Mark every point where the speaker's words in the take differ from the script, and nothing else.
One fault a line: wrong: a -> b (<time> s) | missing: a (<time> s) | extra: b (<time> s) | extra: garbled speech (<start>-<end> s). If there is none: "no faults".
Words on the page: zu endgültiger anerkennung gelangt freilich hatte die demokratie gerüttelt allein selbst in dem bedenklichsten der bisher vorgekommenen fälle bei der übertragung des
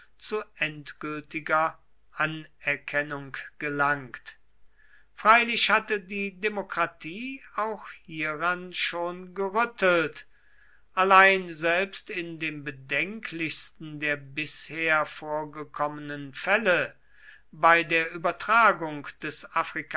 extra: auch hieran schon (7.6 s)